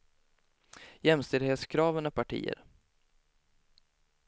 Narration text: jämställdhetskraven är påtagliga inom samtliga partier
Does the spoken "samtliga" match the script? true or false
false